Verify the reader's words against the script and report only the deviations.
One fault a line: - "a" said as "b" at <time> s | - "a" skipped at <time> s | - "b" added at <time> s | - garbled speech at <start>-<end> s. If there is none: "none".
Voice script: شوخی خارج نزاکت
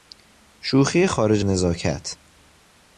none